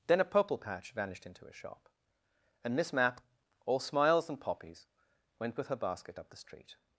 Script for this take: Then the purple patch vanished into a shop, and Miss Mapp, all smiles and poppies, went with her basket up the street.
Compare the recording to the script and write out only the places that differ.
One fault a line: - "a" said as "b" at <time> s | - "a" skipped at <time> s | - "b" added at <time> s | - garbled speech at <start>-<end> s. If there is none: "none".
- "the" said as "a" at 0.2 s